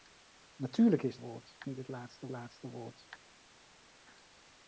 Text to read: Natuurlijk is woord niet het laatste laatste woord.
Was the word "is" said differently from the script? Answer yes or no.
no